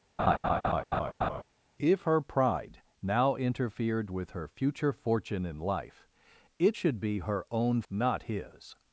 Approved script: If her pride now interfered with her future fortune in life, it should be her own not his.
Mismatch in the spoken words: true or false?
false